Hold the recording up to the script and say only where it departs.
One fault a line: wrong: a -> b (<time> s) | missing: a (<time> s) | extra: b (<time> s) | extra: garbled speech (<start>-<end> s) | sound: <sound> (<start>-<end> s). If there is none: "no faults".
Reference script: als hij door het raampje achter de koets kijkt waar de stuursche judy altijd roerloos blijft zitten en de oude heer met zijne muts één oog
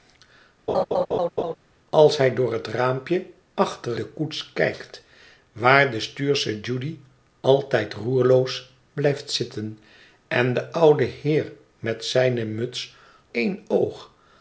sound: laugh (0.7-1.5 s)